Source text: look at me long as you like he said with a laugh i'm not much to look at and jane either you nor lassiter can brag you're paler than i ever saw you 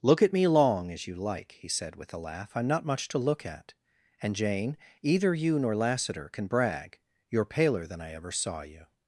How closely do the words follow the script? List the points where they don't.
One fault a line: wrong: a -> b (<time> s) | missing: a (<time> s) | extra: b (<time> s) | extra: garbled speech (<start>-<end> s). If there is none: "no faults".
no faults